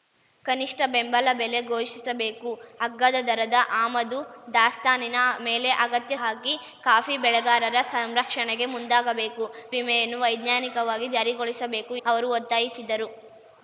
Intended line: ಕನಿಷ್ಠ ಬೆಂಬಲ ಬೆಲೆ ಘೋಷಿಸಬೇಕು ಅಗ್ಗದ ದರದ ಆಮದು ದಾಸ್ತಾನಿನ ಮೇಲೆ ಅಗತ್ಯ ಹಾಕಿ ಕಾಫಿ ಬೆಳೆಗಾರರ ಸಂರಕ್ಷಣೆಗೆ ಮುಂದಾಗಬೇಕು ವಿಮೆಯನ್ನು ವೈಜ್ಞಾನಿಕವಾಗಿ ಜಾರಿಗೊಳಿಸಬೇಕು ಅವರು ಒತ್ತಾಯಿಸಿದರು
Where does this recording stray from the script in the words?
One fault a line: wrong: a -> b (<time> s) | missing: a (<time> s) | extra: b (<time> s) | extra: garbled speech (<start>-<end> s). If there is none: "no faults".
no faults